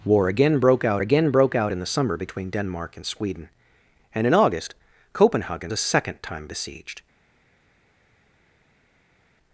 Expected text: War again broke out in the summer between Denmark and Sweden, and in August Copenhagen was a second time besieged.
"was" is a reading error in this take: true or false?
true